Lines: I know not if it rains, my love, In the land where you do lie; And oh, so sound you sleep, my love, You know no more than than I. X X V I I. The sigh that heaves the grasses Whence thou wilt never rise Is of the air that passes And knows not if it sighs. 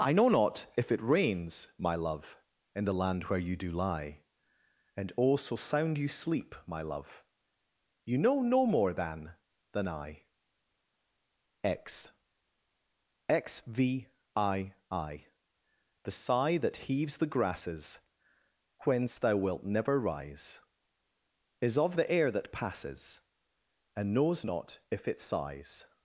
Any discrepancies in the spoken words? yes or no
no